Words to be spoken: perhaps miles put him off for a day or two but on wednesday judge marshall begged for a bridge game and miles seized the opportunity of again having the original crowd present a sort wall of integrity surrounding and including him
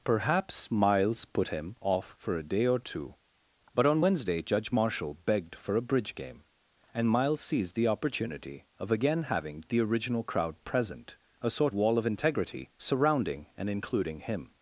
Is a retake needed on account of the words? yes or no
no